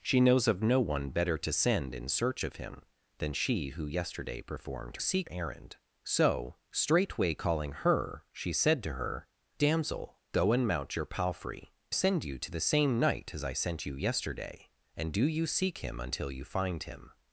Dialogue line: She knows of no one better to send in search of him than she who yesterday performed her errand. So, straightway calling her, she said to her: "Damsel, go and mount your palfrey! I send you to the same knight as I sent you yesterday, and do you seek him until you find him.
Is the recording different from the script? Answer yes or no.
yes